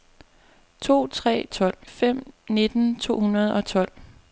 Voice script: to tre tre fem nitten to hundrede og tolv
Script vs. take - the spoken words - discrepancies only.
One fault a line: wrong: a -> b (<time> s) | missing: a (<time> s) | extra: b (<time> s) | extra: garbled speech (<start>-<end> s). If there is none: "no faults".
wrong: tre -> tolv (1.5 s)